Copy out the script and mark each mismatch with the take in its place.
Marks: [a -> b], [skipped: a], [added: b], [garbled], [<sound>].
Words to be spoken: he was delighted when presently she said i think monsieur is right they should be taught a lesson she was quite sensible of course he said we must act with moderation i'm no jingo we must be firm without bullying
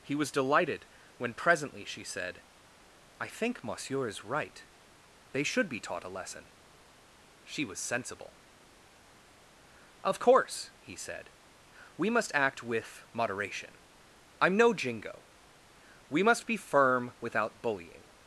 he was delighted when presently she said i think monsieur is right they should be taught a lesson she was [skipped: quite] sensible of course he said we must act with moderation i'm no jingo we must be firm without bullying